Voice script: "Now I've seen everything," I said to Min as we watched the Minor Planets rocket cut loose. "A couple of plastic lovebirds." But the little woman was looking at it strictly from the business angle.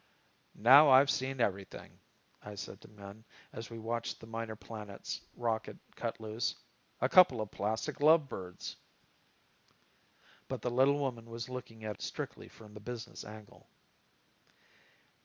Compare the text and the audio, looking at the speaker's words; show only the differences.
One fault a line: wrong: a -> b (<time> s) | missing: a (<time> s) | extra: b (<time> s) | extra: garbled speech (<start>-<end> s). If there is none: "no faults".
missing: it (12.0 s)